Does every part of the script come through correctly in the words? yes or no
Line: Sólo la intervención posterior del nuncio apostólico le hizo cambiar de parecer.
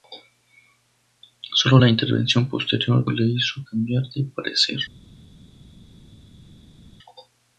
no